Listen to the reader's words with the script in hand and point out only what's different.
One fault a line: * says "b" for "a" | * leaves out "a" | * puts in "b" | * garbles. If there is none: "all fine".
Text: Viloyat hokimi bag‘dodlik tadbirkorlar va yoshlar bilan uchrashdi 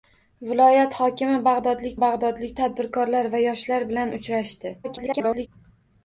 * puts in "bag‘dodlik"
* garbles